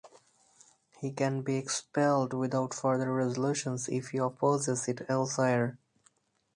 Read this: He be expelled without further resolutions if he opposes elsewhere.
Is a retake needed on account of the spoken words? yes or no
yes